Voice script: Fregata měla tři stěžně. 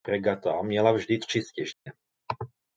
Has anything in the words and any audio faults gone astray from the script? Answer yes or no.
yes